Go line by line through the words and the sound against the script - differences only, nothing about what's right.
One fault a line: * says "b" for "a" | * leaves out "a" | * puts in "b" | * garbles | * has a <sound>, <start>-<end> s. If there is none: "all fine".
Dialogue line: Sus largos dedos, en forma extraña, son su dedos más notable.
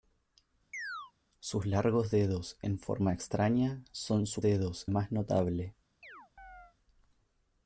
* has a chirp, 0.7-1.1 s
* has a chirp, 6.0-6.8 s